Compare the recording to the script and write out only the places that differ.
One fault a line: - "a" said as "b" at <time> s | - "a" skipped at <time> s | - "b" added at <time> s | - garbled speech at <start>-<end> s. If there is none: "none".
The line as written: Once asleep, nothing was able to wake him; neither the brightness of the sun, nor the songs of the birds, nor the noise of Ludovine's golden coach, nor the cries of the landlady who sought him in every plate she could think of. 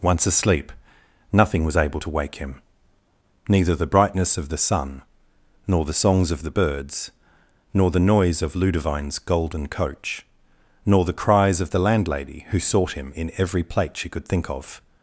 none